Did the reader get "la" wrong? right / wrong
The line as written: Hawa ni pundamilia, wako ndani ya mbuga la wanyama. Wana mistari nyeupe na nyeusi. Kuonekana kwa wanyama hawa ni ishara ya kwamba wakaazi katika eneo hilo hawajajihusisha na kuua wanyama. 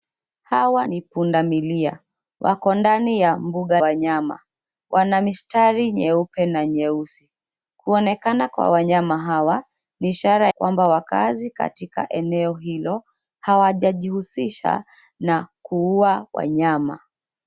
wrong